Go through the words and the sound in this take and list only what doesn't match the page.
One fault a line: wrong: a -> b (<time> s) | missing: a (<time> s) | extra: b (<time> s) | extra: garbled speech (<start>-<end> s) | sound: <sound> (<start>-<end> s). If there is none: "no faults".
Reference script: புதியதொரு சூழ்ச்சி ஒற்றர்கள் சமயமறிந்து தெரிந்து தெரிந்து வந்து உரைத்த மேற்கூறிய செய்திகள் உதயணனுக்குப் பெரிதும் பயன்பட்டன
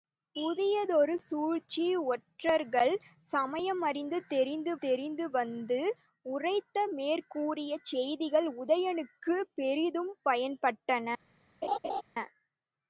sound: laugh (11.6-12.0 s)